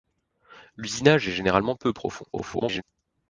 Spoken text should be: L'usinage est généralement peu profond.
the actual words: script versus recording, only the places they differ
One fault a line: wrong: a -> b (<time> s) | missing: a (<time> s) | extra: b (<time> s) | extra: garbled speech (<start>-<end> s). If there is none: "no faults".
extra: garbled speech (2.3-2.8 s)